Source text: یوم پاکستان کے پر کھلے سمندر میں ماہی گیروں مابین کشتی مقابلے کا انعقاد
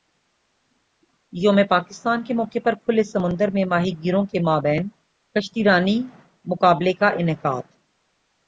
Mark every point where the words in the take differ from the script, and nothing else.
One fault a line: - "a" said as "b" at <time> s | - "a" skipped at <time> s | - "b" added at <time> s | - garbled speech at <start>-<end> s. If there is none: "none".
- "موقع" added at 2.3 s
- "کے" added at 4.2 s
- "رانی" added at 5.6 s